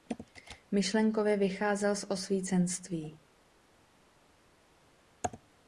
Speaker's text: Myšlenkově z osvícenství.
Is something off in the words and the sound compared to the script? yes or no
yes